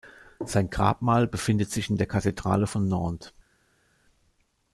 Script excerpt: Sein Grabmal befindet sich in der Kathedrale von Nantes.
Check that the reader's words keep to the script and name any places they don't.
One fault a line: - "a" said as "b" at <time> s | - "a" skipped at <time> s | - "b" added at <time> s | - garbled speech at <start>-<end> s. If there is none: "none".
none